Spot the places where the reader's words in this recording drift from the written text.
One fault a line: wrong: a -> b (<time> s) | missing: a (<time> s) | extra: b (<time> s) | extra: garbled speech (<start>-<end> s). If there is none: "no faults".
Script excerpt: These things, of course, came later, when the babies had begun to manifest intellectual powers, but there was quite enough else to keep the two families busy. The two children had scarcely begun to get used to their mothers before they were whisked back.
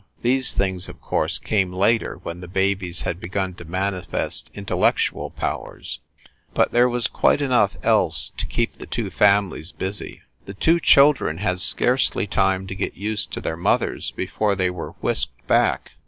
wrong: begun -> time (12.2 s)